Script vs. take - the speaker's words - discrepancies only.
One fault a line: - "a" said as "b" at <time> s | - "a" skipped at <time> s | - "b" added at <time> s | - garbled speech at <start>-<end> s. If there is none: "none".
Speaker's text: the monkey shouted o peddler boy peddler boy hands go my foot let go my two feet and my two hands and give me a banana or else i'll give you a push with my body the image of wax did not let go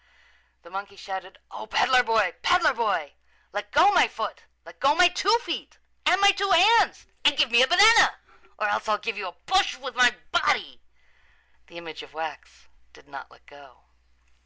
- "hands" said as "let" at 3.5 s